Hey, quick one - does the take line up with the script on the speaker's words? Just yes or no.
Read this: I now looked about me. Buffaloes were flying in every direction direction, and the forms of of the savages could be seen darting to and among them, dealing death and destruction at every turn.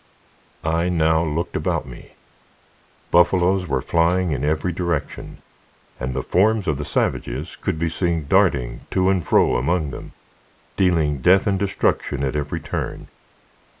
no